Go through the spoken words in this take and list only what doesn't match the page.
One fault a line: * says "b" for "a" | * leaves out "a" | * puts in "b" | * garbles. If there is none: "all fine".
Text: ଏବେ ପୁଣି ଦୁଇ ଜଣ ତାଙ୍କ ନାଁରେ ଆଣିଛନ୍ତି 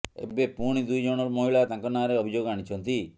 * puts in "ମହିଳା"
* puts in "ଅଭିଯୋଗ"